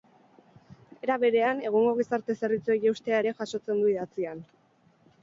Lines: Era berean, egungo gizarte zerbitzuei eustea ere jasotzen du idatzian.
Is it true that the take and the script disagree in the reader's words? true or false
false